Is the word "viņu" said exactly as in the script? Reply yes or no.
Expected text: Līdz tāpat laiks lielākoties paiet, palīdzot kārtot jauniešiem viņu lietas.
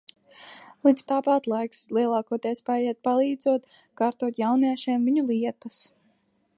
yes